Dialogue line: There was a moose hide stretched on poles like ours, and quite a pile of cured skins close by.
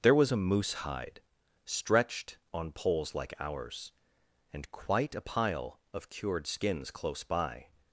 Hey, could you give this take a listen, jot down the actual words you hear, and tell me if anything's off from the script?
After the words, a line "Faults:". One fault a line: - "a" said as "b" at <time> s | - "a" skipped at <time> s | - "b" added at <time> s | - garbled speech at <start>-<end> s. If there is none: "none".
There was a moose hide stretched on poles like ours, and quite a pile of cured skins close by.
Faults:
none